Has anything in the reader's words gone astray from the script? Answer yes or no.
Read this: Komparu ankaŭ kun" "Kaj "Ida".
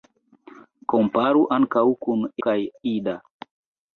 no